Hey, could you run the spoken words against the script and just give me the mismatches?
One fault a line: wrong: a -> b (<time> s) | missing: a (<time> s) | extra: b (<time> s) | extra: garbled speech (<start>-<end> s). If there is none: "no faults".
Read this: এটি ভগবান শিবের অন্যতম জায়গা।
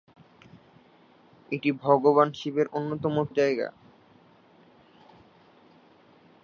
no faults